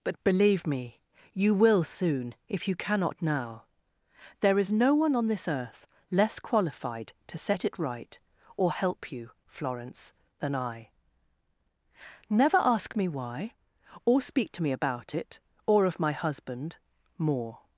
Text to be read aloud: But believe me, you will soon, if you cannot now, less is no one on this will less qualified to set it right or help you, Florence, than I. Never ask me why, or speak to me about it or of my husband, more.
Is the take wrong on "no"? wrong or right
right